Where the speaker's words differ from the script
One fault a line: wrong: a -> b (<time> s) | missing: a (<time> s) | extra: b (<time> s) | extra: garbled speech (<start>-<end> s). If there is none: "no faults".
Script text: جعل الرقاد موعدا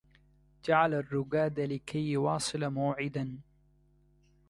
extra: لكي يواصل (1.6 s)